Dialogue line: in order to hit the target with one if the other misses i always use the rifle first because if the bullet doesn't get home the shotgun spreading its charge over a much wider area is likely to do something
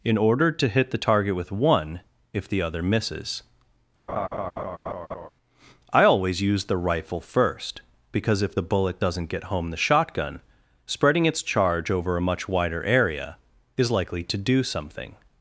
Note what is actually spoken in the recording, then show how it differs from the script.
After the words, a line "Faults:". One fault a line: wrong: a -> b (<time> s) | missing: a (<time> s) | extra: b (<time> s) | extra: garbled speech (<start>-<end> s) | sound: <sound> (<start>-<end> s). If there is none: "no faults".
in order to hit the target with one if the other misses i always use the rifle first because if the bullet doesn't get home the shotgun spreading its charge over a much wider area is likely to do something
Faults:
sound: laugh (4.1-5.3 s)